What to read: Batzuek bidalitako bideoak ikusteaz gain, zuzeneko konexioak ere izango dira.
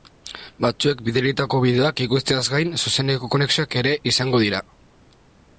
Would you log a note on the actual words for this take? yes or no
no